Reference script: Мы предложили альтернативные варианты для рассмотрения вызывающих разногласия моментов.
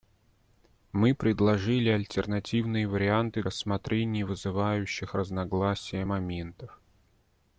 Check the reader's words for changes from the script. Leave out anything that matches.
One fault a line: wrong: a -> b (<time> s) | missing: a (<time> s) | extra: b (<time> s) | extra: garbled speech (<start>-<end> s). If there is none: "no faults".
missing: для (3.4 s)